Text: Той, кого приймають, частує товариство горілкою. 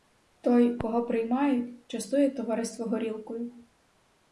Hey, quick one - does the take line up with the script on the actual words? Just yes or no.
yes